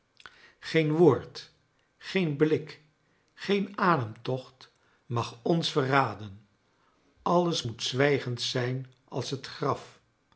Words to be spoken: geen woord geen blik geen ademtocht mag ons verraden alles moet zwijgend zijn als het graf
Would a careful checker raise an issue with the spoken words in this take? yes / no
no